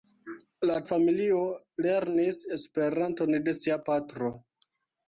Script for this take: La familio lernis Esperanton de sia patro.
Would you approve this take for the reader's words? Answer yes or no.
yes